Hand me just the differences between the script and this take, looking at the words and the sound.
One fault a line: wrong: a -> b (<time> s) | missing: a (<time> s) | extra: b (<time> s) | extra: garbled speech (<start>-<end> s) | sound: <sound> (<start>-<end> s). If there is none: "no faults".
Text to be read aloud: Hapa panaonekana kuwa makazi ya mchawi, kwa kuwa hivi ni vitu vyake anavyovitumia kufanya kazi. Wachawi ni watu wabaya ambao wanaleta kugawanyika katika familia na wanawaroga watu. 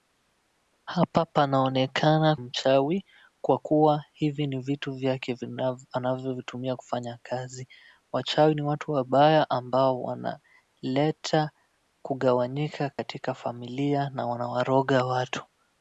missing: kuwa makazi ya (2.4 s)
sound: dropout (12.9-13.0 s)